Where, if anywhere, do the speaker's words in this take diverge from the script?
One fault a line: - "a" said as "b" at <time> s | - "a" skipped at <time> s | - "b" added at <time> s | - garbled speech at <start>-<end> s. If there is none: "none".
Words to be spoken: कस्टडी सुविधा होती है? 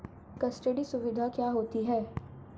- "क्या" added at 1.3 s